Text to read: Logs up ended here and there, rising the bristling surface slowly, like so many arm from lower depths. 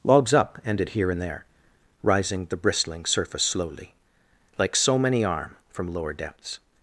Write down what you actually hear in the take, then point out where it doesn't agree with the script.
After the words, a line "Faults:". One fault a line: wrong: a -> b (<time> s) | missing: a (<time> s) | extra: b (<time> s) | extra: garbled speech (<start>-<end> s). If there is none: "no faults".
Logs up ended here and there, rising the bristling surface slowly, like so many arm from lower depths.
Faults:
no faults